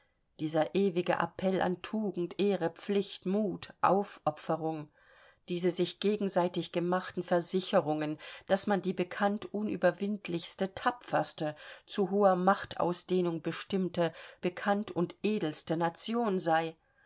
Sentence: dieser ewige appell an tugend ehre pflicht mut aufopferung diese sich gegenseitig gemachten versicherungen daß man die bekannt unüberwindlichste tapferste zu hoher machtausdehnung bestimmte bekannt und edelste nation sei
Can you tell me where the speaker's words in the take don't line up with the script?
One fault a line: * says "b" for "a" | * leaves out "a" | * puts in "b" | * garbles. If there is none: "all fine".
all fine